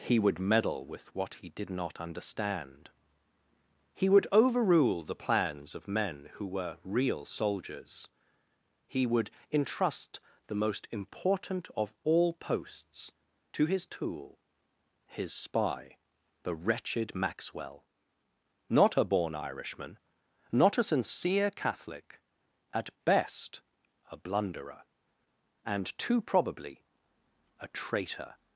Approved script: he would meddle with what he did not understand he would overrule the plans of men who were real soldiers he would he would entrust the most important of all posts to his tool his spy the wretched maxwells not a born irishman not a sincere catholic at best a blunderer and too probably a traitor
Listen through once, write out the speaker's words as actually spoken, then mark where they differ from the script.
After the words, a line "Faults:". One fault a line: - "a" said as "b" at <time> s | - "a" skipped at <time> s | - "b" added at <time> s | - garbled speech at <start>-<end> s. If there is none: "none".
he would meddle with what he did not understand he would overrule the plans of men who were real soldiers he would entrust the most important of all posts to his tool his spy the wretched maxwell not a born irishman not a sincere catholic at best a blunderer and too probably a traitor
Faults:
- "he would" skipped at 9.3 s
- "maxwells" said as "maxwell" at 17.1 s